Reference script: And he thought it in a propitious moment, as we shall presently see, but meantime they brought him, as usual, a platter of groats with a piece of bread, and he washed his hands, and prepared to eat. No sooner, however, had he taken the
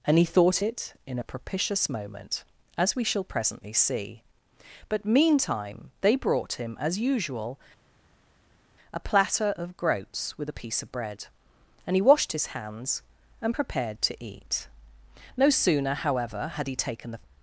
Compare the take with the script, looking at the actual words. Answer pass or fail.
pass